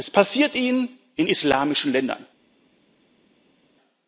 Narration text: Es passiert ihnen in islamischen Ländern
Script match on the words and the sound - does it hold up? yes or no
yes